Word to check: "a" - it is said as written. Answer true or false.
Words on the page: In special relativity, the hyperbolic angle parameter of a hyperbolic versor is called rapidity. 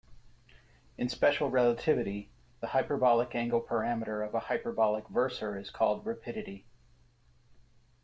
true